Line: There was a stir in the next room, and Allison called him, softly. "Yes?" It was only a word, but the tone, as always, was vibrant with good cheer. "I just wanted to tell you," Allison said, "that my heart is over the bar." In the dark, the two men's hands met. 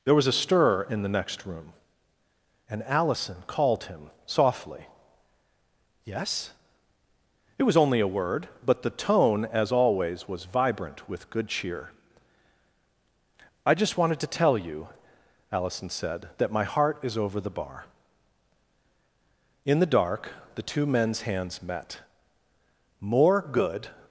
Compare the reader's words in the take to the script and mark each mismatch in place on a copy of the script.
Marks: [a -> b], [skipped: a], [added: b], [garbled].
There was a stir in the next room, and Allison called him, softly. "Yes?" It was only a word, but the tone, as always, was vibrant with good cheer. "I just wanted to tell you," Allison said, "that my heart is over the bar." In the dark, the two men's hands met. [added: More good]